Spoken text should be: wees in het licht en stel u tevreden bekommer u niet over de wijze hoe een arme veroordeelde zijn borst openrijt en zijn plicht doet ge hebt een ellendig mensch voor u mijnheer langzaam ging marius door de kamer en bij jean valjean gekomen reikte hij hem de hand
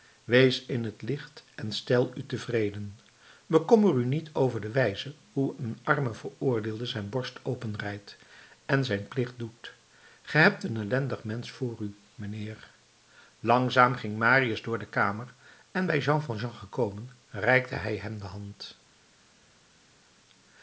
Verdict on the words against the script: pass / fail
pass